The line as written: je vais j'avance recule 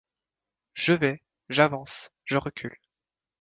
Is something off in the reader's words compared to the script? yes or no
yes